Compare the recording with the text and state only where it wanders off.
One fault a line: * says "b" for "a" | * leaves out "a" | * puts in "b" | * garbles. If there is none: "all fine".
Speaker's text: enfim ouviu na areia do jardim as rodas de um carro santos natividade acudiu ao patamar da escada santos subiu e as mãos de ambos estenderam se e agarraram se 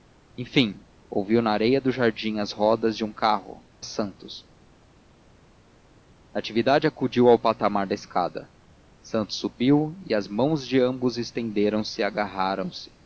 all fine